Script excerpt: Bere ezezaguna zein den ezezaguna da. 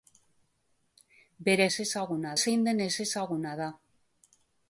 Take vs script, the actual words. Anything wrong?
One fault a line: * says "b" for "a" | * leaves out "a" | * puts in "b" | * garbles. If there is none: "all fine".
all fine